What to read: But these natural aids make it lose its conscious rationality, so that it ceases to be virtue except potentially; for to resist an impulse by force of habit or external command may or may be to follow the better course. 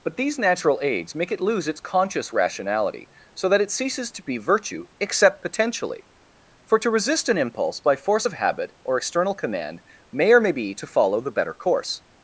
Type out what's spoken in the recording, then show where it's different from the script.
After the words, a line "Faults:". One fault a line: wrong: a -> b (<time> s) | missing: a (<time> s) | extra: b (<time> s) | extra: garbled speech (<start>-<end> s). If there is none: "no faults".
But these natural aids make it lose its conscious rationality, so that it ceases to be virtue except potentially; for to resist an impulse by force of habit or external command may or may be to follow the better course.
Faults:
no faults